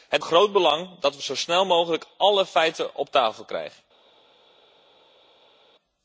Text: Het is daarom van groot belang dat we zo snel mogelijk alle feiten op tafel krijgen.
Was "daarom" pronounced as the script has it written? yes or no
no